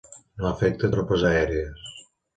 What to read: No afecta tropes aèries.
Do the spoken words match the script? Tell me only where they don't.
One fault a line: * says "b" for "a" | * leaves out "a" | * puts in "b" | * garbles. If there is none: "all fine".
all fine